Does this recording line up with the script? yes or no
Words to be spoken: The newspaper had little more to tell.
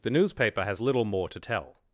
no